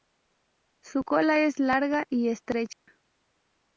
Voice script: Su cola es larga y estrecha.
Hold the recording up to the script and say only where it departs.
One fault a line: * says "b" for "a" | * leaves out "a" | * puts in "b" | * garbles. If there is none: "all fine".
all fine